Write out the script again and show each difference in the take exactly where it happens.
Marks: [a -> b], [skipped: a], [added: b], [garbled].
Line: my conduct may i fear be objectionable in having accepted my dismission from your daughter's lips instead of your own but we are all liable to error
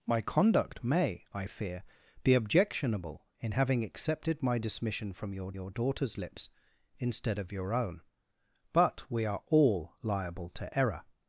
my conduct may i fear be objectionable in having accepted my dismission from your [added: your] daughter's lips instead of your own but we are all liable to error